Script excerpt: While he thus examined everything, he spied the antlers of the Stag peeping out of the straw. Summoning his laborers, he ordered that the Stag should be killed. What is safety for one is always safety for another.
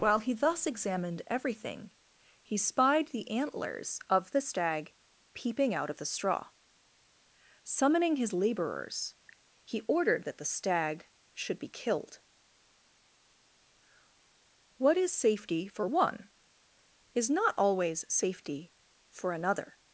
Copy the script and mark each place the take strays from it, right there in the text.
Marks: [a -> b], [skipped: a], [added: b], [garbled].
While he thus examined everything, he spied the antlers of the Stag peeping out of the straw. Summoning his laborers, he ordered that the Stag should be killed. What is safety for one is [added: not] always safety for another.